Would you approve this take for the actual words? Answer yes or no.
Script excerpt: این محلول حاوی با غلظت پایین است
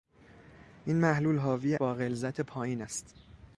yes